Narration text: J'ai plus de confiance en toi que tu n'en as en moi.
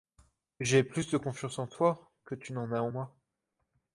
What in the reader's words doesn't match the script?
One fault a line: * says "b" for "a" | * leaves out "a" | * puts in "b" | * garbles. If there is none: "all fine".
all fine